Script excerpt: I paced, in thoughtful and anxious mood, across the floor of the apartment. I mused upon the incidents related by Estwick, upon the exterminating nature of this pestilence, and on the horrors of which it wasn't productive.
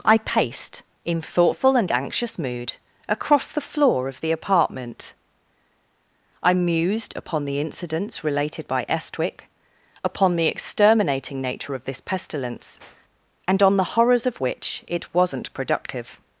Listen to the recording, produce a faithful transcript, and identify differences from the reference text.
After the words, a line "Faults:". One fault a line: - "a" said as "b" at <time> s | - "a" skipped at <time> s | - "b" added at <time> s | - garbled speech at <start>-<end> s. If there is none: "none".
I paced, in thoughtful and anxious mood, across the floor of the apartment. I mused upon the incidents related by Estwick, upon the exterminating nature of this pestilence, and on the horrors of which it wasn't productive.
Faults:
none